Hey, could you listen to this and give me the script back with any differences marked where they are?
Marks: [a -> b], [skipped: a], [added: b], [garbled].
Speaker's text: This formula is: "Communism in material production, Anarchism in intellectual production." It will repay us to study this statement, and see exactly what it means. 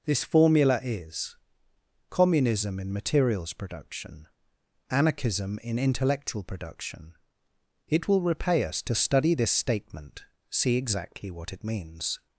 This formula is: "Communism in [material -> materials] production, Anarchism in intellectual production." It will repay us to study this statement, [skipped: and] see exactly what it means.